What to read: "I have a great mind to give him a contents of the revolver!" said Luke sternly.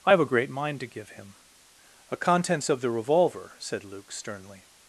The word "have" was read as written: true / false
true